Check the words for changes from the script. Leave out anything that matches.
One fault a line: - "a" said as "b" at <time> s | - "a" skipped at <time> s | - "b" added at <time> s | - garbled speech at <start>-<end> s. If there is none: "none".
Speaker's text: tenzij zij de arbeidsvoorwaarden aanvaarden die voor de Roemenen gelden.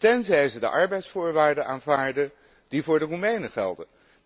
none